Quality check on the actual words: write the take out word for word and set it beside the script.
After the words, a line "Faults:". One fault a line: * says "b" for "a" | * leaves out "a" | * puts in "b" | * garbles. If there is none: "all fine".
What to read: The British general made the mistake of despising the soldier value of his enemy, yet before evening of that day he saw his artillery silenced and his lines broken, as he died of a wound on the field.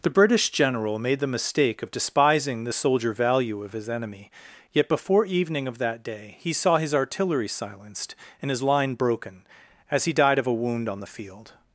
The British general made the mistake of despising the soldier value of his enemy, yet before evening of that day he saw his artillery silenced and his line broken, as he died of a wound on the field.
Faults:
* says "line" for "lines"